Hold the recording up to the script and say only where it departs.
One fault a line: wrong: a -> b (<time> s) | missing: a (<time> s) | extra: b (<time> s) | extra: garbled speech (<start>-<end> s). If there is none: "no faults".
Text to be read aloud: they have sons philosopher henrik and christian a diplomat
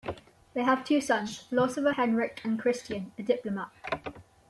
extra: two (0.8 s)